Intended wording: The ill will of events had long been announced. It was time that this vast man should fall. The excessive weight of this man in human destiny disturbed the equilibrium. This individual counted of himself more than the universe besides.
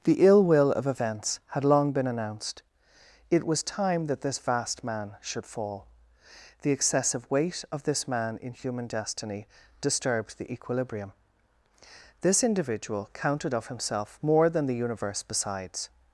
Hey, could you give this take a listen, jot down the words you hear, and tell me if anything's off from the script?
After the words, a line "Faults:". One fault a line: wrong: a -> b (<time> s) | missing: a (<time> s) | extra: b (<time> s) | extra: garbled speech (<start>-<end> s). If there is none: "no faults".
The ill will of events had long been announced. It was time that this vast man should fall. The excessive weight of this man in human destiny disturbed the equilibrium. This individual counted of himself more than the universe besides.
Faults:
no faults